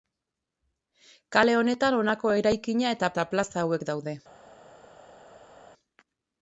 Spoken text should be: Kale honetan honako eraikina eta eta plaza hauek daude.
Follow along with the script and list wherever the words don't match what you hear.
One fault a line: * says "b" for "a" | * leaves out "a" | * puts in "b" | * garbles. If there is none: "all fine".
all fine